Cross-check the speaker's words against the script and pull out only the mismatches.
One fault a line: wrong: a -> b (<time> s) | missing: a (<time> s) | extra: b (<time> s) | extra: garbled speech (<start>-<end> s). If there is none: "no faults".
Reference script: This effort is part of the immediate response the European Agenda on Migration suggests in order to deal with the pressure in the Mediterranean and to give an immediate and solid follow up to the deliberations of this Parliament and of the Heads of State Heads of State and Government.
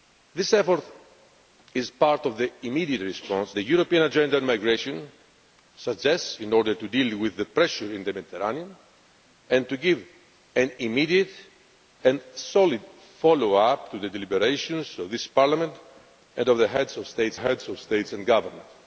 no faults